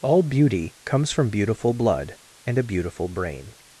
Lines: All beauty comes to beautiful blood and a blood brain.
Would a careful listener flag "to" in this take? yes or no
yes